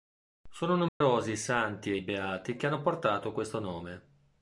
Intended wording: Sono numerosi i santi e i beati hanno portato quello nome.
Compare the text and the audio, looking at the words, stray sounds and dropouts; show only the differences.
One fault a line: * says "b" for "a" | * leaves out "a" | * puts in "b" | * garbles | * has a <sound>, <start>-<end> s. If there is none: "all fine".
* has a dropout, 0.9-1.0 s
* puts in "che"
* says "questo" for "quello"